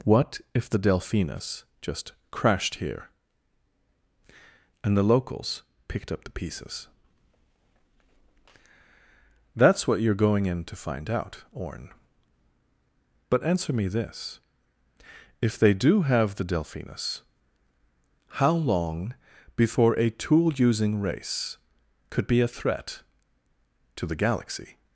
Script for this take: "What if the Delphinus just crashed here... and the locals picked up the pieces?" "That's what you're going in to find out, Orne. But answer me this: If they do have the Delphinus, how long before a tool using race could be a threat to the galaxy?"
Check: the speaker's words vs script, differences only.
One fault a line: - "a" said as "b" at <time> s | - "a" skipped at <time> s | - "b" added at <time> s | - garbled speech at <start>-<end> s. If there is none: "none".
none